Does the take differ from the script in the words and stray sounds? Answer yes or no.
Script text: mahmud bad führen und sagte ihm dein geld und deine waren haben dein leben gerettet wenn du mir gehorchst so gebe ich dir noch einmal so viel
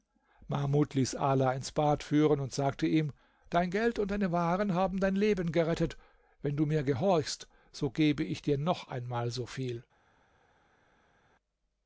yes